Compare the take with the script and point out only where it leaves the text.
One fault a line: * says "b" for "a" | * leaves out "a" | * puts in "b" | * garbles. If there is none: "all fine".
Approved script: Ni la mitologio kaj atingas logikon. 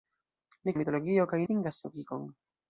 all fine